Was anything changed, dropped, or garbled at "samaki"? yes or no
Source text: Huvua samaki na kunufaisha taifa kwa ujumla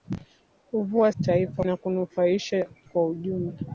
yes